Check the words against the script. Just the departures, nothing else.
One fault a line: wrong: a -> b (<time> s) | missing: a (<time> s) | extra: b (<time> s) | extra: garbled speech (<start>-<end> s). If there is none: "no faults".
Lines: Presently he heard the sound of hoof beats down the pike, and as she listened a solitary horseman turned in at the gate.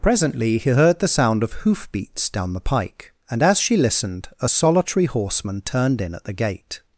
no faults